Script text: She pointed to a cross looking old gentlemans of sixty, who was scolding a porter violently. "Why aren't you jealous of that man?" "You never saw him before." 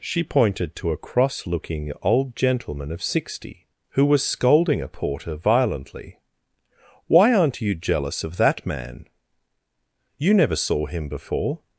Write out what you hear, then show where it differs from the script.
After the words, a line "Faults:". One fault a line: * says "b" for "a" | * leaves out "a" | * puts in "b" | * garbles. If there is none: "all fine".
She pointed to a cross looking old gentleman of sixty, who was scolding a porter violently. "Why aren't you jealous of that man?" "You never saw him before."
Faults:
* says "gentleman" for "gentlemans"